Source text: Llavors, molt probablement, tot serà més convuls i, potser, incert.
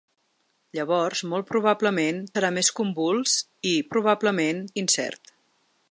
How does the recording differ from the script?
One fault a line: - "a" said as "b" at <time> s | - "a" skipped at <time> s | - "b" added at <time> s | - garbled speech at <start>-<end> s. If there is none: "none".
- "tot" skipped at 2.2 s
- "potser" said as "probablement" at 3.9 s